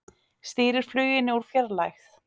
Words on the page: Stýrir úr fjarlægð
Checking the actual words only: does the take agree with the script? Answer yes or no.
no